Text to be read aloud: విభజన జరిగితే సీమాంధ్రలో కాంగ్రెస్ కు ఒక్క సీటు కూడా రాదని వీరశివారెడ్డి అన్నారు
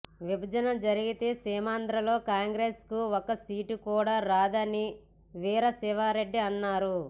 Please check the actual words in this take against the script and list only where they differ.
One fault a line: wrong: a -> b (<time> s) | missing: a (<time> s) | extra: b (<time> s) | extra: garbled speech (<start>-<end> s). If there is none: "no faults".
no faults